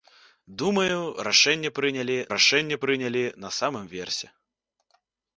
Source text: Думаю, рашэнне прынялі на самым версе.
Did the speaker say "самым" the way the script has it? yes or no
yes